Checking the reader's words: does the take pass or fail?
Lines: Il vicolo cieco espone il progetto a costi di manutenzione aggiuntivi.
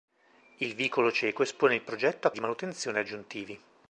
fail